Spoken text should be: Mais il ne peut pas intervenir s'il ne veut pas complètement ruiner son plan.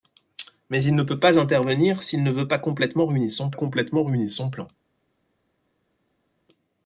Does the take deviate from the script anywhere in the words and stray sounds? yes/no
yes